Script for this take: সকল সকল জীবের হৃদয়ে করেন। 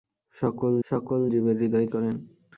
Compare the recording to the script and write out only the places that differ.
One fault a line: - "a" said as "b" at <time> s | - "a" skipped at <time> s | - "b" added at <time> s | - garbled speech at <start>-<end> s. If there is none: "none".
none